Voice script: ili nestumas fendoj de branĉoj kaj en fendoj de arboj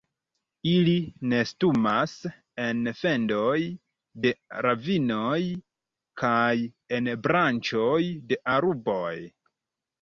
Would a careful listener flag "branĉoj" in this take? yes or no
yes